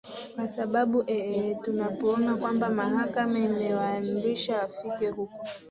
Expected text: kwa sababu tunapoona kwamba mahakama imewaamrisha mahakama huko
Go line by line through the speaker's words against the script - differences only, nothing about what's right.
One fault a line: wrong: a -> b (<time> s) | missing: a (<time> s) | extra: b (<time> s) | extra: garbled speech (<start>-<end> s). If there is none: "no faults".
extra: ee (1.1 s)
wrong: mahakama -> wafike (4.6 s)